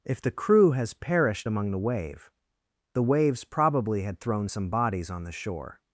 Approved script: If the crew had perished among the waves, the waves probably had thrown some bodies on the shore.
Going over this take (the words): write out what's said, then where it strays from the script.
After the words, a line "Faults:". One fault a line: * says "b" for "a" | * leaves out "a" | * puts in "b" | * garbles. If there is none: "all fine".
If the crew has perished among the wave, the waves probably had thrown some bodies on the shore.
Faults:
* says "has" for "had"
* says "wave" for "waves"